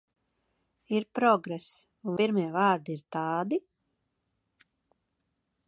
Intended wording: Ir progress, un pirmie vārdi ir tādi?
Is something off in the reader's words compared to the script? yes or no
no